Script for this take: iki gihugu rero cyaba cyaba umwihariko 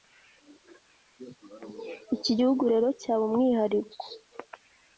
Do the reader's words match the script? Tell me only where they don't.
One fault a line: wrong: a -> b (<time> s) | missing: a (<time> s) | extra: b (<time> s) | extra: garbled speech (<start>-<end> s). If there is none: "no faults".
missing: cyaba (3.2 s)